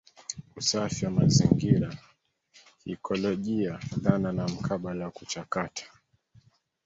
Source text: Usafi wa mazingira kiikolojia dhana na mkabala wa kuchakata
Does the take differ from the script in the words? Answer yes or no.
no